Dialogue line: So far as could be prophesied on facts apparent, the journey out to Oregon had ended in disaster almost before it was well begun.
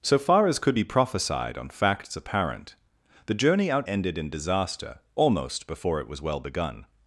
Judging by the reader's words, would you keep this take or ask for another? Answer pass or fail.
fail